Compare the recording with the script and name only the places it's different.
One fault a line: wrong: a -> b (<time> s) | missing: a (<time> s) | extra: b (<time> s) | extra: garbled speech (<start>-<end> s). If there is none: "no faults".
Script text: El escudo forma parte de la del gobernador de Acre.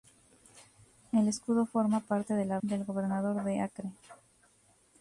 no faults